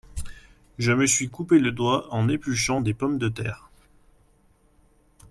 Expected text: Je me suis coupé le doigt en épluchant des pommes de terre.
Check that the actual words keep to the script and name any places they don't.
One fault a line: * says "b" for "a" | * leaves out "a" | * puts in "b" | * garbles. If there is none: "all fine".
all fine